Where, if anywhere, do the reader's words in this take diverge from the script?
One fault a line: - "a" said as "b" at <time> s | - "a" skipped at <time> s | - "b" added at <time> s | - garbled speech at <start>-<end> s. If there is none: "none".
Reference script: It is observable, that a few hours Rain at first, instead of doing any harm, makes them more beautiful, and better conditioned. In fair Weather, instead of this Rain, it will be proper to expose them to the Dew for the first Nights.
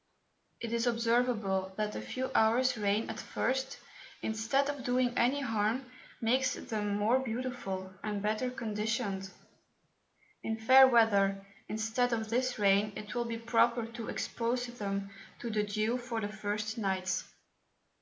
none